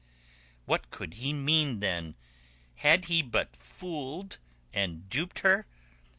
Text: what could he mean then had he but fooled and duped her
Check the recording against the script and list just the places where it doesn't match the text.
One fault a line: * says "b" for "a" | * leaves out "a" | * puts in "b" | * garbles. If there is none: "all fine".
all fine